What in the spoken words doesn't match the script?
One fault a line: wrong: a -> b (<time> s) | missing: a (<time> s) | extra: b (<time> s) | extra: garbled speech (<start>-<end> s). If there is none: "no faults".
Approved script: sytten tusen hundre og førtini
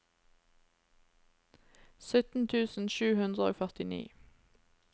extra: sju (3.0 s)